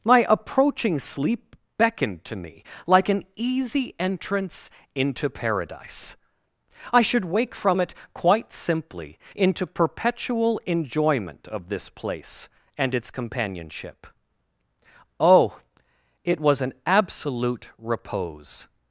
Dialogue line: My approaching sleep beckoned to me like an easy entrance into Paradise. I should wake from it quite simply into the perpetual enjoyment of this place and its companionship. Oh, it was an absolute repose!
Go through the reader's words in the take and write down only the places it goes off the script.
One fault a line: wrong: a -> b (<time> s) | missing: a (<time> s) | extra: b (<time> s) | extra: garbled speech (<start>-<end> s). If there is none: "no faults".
missing: the (9.7 s)